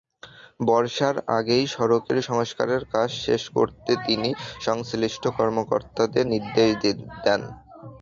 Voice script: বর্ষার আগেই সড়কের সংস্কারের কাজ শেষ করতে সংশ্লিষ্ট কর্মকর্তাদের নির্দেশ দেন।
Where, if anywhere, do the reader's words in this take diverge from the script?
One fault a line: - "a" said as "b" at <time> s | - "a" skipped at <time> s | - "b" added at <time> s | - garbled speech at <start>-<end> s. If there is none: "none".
- "তিনি" added at 4.1 s